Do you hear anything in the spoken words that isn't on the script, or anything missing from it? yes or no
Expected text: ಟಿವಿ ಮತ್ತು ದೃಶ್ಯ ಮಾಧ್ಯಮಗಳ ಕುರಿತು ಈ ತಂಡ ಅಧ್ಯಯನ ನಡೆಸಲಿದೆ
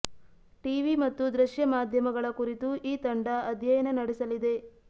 no